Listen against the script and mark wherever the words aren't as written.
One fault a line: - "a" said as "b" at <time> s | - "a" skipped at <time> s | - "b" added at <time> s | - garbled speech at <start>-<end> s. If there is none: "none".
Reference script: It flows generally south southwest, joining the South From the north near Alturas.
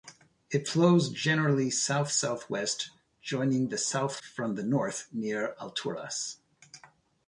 none